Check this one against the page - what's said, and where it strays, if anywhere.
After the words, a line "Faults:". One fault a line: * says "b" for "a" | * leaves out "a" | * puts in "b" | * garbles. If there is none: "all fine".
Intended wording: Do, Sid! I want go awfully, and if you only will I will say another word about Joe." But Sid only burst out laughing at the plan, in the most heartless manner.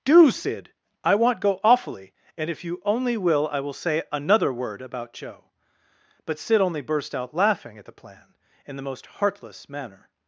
Do, Sid! I want go awfully, and if you only will I will say another word about Joe." But Sid only burst out laughing at the plan, in the most heartless manner.
Faults:
all fine